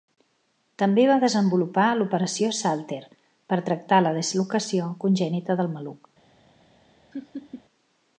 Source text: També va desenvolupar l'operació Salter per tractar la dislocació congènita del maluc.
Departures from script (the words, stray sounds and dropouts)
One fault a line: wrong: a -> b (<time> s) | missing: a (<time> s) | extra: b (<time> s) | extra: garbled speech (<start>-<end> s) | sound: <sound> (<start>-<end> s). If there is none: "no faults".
sound: laugh (7.1-7.6 s)